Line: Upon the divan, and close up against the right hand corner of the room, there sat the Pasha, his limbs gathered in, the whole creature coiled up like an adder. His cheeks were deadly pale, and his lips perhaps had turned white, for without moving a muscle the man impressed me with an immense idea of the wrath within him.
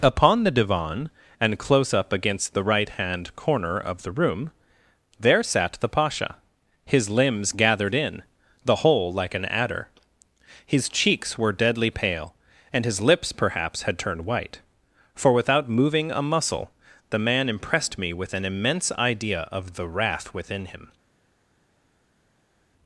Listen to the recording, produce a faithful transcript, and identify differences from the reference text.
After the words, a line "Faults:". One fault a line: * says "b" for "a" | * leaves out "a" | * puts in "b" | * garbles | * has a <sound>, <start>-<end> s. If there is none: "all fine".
Upon the divan, and close up against the right hand corner of the room, there sat the Pasha, his limbs gathered in, the whole like an adder. His cheeks were deadly pale, and his lips perhaps had turned white, for without moving a muscle the man impressed me with an immense idea of the wrath within him.
Faults:
* leaves out "creature coiled up"